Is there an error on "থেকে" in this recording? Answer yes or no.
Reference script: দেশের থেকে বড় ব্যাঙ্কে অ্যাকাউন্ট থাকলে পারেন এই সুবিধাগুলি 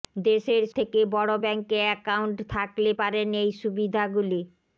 no